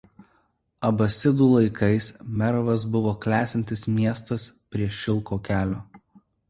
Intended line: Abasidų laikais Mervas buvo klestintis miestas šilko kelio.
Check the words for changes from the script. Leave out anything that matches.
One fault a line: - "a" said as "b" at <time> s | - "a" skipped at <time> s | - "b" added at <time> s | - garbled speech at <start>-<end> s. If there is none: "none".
- "prie" added at 4.7 s